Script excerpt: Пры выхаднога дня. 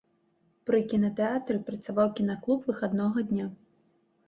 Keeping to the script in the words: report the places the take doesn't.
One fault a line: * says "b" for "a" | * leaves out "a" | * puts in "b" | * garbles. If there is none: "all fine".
* puts in "кінатэатры працаваў кінаклуб"